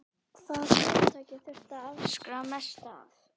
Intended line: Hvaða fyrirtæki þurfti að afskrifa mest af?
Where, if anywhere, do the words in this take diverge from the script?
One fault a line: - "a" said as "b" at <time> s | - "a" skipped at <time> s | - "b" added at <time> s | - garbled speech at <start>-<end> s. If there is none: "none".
none